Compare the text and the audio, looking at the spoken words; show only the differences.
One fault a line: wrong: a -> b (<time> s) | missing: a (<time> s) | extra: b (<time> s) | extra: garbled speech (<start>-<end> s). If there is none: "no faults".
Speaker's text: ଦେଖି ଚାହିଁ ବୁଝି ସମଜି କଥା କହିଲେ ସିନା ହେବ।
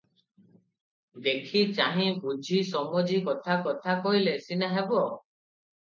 extra: କଥା (3.7 s)